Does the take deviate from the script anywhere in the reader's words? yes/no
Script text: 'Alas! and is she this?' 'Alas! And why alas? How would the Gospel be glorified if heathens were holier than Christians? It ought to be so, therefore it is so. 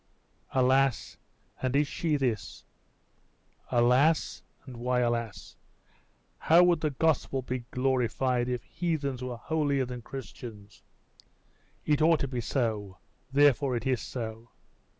no